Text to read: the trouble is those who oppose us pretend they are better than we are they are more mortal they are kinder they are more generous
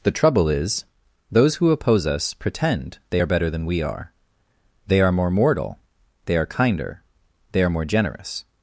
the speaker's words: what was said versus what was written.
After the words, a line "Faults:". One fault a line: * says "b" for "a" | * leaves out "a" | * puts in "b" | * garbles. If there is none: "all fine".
the trouble is those who oppose us pretend they are better than we are they are more mortal they are kinder they are more generous
Faults:
all fine